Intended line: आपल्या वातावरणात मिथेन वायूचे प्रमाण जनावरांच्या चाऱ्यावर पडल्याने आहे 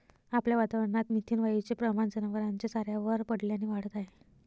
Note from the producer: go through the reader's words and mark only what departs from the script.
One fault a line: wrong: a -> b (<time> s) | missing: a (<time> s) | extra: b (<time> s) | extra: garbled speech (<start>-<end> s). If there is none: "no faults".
extra: वाढत (3.6 s)